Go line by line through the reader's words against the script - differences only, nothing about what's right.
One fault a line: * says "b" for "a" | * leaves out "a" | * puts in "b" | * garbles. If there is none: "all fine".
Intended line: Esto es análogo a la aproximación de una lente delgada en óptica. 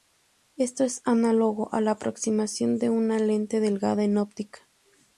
all fine